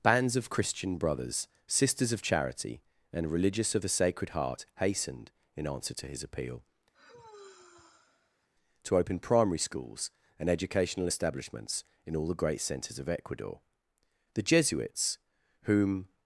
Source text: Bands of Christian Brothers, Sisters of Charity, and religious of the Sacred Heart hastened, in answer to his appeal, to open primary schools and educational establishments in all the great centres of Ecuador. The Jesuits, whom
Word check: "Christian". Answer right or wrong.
right